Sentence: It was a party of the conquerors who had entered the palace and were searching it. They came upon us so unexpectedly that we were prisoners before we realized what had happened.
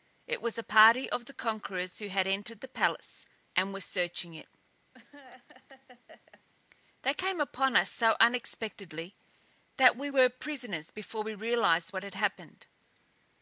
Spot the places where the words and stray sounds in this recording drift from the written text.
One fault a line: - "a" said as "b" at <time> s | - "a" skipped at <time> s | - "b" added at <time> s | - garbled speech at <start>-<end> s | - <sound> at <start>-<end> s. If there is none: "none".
- laugh at 4.9-6.4 s